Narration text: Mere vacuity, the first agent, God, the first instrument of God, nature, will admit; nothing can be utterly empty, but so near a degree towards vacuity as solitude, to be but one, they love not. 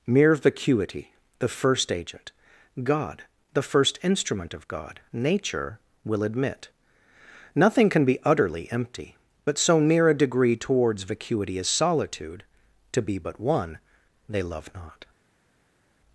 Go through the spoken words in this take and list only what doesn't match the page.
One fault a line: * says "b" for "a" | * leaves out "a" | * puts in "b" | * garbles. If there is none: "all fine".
all fine